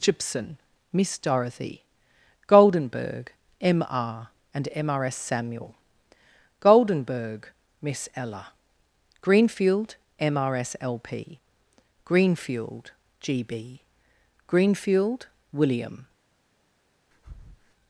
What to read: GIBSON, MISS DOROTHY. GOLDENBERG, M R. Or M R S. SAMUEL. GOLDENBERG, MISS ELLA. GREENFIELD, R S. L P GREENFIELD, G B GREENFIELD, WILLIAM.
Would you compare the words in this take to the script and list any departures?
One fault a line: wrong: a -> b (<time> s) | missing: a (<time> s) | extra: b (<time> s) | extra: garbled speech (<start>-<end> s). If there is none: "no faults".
wrong: Or -> AND (4.5 s)
extra: M (10.2 s)